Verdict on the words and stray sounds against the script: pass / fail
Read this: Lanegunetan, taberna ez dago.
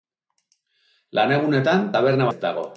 pass